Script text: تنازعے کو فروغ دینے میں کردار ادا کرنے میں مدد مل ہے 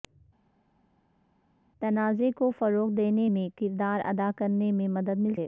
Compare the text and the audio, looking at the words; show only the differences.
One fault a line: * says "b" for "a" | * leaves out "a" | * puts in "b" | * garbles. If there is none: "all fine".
all fine